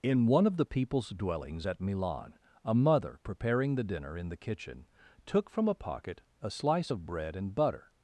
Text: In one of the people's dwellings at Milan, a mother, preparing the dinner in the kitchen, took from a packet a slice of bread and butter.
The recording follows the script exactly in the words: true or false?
false